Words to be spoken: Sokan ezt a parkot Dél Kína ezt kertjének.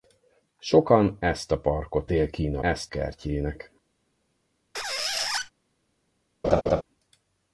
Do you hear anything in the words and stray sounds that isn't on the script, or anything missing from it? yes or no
yes